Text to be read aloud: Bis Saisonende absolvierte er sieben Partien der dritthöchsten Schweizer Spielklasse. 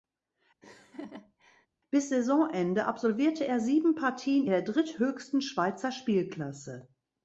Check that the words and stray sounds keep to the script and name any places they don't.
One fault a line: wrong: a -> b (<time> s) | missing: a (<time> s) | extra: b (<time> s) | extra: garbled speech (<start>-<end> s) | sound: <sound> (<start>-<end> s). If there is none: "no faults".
sound: laugh (0.6-1.7 s)